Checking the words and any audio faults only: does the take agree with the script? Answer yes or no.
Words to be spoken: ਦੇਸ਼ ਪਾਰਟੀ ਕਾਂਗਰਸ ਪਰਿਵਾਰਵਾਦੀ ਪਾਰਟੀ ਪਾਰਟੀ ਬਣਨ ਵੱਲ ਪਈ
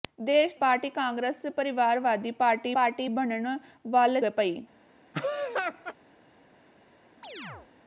no